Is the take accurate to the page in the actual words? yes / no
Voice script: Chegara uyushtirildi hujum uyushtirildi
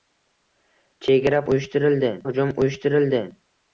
yes